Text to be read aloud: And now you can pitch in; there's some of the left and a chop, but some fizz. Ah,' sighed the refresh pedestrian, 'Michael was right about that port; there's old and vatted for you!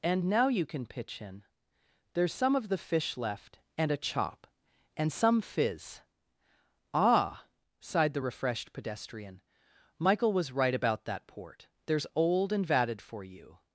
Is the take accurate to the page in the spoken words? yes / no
no